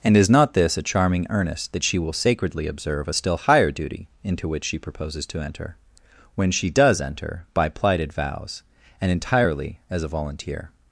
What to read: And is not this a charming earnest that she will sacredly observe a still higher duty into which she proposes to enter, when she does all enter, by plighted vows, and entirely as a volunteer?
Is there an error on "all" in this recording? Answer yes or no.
yes